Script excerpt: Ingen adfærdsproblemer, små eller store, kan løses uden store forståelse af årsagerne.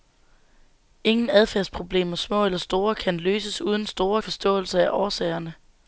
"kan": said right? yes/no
yes